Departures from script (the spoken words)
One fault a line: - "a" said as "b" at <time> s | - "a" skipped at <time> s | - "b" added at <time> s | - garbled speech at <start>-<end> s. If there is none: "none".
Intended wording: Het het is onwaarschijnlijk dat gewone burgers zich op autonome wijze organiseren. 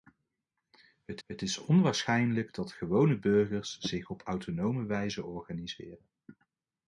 none